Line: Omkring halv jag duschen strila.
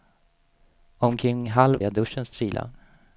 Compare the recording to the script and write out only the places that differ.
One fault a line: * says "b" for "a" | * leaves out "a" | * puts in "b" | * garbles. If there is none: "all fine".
all fine